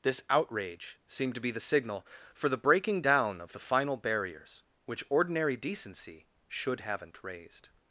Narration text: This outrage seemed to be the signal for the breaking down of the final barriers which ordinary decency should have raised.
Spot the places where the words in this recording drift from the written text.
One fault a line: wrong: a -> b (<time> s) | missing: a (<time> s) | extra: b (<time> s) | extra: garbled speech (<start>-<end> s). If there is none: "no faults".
wrong: have -> haven't (6.8 s)